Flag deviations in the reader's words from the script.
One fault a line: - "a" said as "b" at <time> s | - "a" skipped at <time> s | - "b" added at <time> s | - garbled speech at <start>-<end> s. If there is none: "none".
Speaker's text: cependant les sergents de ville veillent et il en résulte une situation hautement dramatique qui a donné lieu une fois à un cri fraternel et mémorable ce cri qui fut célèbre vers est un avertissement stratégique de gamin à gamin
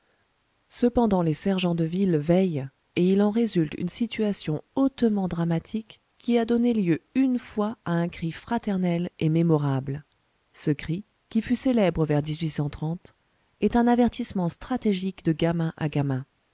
none